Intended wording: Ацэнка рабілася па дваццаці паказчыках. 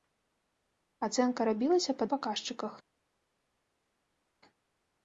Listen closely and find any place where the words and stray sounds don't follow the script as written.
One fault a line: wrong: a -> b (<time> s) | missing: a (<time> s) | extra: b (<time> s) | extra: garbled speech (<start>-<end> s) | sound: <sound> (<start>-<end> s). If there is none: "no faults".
missing: дваццаці (2.1 s)